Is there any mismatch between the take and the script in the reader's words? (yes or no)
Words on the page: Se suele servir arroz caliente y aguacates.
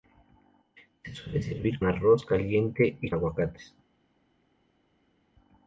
no